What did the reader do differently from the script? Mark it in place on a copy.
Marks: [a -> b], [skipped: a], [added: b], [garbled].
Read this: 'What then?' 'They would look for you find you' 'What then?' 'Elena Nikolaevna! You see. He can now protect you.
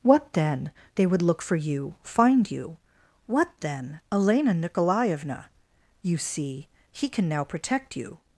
'What then?' 'They would look for you find you' 'What then?' 'Elena Nikolaevna! You see. He can now protect you.